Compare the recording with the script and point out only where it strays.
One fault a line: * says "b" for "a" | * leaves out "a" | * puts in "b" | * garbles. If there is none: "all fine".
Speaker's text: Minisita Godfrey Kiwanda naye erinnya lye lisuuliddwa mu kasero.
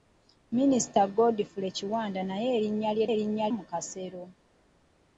* says "erinnya" for "lisuuliddwa"